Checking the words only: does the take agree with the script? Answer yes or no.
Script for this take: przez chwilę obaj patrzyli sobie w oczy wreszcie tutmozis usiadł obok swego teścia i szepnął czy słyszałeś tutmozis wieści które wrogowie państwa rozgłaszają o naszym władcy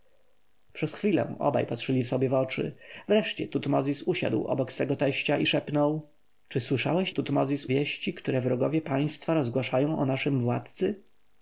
yes